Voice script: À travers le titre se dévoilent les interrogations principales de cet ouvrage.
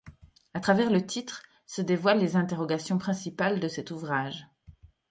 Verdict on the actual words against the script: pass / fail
pass